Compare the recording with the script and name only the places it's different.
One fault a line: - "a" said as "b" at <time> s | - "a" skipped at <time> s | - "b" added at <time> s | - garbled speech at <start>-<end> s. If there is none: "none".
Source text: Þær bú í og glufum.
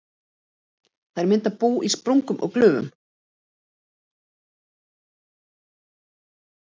- "mynda" added at 1.3 s
- "sprungum" added at 2.0 s